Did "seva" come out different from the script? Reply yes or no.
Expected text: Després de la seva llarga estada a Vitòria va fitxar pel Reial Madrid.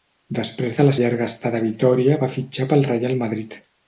yes